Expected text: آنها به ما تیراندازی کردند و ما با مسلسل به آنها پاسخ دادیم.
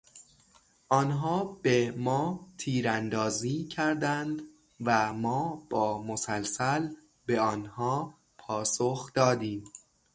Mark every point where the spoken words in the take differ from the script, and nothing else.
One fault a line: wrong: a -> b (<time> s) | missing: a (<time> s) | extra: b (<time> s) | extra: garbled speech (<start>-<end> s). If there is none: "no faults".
no faults